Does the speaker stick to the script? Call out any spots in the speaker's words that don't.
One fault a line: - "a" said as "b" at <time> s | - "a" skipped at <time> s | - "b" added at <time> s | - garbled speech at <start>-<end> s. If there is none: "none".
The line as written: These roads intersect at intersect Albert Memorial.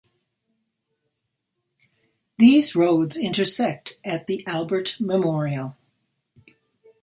- "intersect" said as "the" at 4.3 s